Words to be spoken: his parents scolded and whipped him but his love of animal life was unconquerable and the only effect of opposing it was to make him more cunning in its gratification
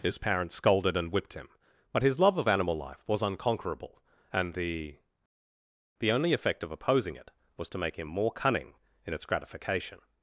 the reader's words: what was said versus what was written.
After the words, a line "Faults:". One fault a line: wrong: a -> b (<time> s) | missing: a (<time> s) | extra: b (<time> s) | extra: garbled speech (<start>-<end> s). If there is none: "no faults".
his parents scolded and whipped him but his love of animal life was unconquerable and the the only effect of opposing it was to make him more cunning in its gratification
Faults:
extra: the (6.0 s)